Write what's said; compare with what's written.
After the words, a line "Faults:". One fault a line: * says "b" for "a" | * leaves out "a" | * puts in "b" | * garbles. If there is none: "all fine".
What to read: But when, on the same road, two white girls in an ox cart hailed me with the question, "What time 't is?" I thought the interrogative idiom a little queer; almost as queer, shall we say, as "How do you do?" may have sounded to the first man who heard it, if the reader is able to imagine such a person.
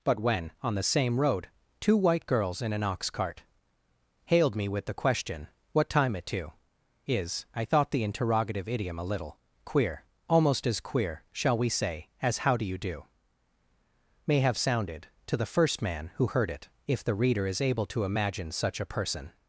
But when, on the same road, two white girls in an ox cart hailed me with the question, "What time 'it to is?" I thought the interrogative idiom a little queer; almost as queer, shall we say, as "How do you do?" may have sounded to the first man who heard it, if the reader is able to imagine such a person.
Faults:
* says "it to" for "t"